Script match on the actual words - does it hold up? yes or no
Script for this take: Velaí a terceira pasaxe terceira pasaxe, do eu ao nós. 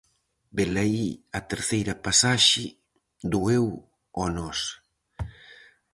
no